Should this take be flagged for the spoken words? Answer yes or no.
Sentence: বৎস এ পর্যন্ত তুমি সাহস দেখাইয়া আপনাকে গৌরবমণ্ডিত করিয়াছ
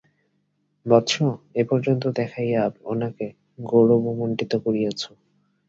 yes